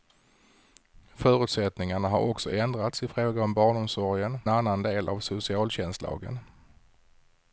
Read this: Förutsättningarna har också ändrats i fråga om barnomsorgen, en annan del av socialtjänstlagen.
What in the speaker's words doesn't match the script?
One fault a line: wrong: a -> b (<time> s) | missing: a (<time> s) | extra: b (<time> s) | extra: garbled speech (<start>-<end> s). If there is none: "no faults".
missing: en (4.4 s)